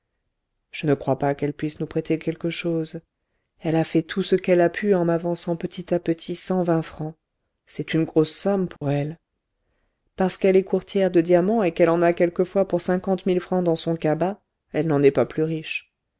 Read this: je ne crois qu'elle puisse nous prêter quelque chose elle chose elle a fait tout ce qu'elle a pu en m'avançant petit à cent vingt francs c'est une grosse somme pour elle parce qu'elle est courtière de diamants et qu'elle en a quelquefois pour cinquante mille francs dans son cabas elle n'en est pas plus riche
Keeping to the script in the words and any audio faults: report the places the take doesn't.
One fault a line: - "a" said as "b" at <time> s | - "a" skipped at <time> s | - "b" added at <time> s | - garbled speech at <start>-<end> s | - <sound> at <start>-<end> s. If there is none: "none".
- "pas" added at 1.2 s
- "chose elle" skipped at 3.7 s
- "petit" added at 6.0 s
- dropout at 8.8-8.8 s